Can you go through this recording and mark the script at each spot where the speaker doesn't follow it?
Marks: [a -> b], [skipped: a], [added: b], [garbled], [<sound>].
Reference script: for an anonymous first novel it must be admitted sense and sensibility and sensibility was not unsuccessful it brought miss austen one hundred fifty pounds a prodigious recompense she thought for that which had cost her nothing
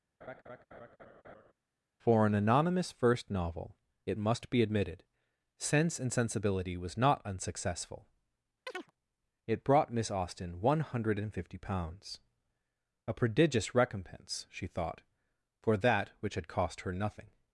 [laugh] for an anonymous first novel it must be admitted sense and sensibility [skipped: and sensibility] was not unsuccessful [chirp] it brought miss austen one hundred fifty pounds a prodigious recompense she thought for that which had cost her nothing